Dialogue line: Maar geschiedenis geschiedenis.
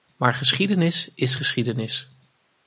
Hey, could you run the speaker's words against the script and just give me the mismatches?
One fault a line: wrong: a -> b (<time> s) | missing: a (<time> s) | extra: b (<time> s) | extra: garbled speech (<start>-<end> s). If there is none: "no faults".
extra: is (1.1 s)